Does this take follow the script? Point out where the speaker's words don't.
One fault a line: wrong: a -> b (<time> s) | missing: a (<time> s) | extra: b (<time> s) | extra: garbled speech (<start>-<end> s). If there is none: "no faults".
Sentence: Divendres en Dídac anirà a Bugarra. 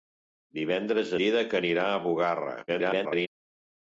missing: en (1.1 s)
extra: garbled speech (2.7-3.3 s)